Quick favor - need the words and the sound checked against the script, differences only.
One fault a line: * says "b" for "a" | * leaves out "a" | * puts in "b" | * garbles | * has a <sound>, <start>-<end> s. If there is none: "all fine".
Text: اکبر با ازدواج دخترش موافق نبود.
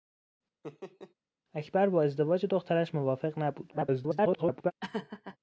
* has a laugh, 0.6-1.1 s
* garbles
* has a laugh, 4.8-5.4 s